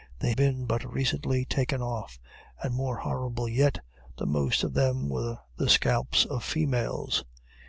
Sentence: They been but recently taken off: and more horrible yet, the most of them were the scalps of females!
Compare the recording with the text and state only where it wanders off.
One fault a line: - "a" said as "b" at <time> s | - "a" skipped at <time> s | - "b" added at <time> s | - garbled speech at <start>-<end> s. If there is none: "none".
none